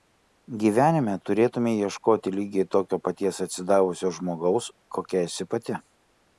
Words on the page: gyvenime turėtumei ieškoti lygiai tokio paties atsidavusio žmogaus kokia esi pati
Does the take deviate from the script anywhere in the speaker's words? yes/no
no